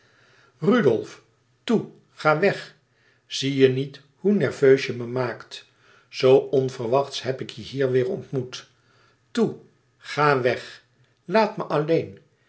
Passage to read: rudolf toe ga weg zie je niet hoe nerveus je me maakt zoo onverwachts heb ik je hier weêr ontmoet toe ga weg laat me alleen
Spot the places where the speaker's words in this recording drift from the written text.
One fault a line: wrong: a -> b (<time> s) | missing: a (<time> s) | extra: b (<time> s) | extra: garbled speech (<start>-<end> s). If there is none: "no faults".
no faults